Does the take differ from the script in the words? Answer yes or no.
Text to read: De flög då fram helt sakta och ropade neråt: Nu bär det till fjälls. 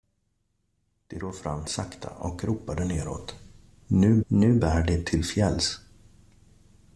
yes